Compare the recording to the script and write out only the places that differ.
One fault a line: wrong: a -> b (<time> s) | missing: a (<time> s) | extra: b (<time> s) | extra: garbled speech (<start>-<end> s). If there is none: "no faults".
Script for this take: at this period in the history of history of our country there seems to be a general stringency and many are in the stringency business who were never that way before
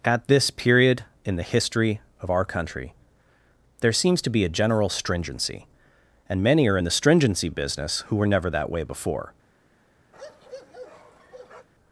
missing: history of (2.3 s)